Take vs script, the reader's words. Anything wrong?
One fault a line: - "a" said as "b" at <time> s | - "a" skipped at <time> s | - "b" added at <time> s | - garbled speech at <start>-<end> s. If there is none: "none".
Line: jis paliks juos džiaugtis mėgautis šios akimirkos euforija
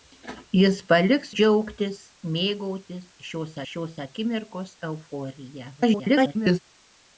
- "juos" skipped at 1.3 s
- "šios" added at 3.7 s
- garbled speech at 5.8-6.6 s